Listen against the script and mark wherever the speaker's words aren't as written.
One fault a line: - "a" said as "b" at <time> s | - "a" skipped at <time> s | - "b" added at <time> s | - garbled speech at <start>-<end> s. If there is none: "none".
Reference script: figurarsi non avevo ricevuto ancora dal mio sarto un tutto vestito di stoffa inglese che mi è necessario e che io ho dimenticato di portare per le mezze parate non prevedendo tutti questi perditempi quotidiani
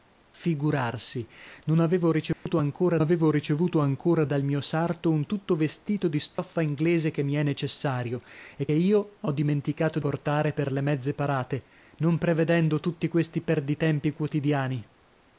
- "avevo ricevuto ancora" added at 3.0 s
- "che" skipped at 8.7 s
- "di" skipped at 10.0 s